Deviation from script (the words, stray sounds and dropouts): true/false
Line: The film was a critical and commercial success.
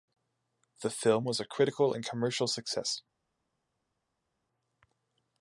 false